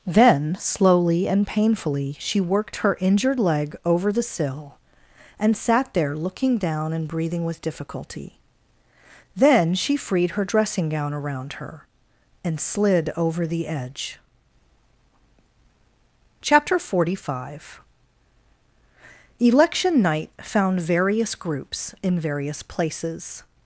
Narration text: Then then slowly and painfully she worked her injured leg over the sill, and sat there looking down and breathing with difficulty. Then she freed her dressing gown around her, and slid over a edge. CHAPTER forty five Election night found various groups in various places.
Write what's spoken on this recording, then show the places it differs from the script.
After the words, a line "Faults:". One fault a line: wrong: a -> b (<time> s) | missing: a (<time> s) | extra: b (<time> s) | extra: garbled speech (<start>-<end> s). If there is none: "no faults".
Then slowly and painfully she worked her injured leg over the sill, and sat there looking down and breathing with difficulty. Then she freed her dressing gown around her, and slid over the edge. CHAPTER forty five Election night found various groups in various places.
Faults:
missing: then (0.6 s)
wrong: a -> the (13.4 s)